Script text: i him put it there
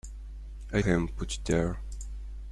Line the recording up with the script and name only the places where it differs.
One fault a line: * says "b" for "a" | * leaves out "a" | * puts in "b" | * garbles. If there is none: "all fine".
all fine